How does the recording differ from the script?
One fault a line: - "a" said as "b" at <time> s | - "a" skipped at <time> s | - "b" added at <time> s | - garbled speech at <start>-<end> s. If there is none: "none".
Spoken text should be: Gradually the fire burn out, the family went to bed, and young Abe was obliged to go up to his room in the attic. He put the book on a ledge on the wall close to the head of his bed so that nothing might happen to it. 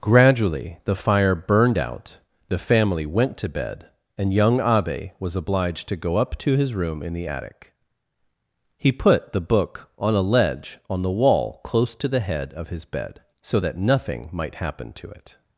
- "burn" said as "burned" at 1.4 s